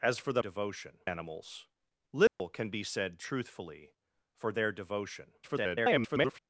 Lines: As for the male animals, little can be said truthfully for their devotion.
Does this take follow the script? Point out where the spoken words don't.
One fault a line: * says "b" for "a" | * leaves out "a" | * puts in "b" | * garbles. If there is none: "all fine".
* says "devotion" for "male"
* garbles